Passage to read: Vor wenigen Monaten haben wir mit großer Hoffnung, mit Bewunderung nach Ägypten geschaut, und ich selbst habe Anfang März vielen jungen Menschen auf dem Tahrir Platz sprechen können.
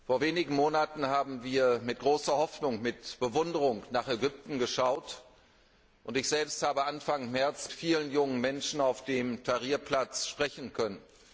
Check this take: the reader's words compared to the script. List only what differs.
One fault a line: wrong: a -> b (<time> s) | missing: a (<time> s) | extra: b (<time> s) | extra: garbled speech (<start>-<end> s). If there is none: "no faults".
no faults